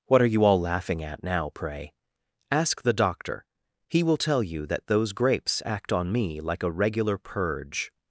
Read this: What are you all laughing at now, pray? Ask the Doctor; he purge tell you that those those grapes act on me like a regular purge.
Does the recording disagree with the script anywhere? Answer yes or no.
yes